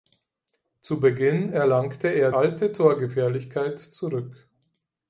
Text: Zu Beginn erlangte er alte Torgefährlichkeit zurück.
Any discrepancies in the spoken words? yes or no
no